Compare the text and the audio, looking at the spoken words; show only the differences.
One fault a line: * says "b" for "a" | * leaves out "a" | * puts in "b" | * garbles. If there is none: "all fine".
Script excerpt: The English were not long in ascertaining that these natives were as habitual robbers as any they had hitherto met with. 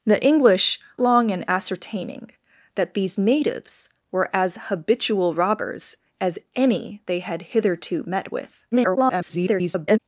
* leaves out "were not"
* garbles